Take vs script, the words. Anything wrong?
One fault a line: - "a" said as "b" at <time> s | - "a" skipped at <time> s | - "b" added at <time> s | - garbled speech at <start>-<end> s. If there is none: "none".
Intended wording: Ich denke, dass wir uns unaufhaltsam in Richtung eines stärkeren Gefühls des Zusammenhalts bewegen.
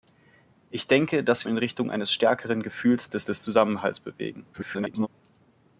- "wir uns unaufhaltsam" skipped at 1.4 s
- "des" added at 3.2 s
- garbled speech at 4.5-5.1 s